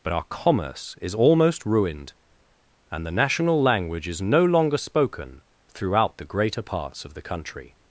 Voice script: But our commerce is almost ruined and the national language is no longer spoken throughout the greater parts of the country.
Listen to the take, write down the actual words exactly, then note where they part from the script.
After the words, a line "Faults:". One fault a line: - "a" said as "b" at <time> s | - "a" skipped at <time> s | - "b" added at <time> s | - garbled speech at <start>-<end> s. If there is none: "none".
But our commerce is almost ruined and the national language is no longer spoken throughout the greater parts of the country.
Faults:
none